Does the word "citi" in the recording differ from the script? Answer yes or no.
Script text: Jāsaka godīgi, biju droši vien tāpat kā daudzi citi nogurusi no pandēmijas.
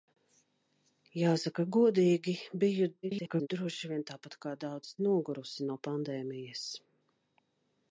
yes